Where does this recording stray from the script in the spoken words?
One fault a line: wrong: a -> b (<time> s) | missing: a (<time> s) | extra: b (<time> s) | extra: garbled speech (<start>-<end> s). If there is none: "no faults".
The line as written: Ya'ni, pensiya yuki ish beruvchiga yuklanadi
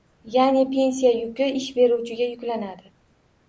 no faults